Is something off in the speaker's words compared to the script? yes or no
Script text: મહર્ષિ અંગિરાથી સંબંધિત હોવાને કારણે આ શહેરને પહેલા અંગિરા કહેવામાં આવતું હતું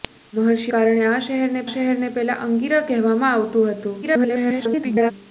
yes